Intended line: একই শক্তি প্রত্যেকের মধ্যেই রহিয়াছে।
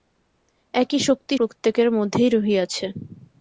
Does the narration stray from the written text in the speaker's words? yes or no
no